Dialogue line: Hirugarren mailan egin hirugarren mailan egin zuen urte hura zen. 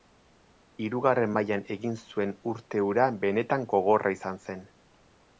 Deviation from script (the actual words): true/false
true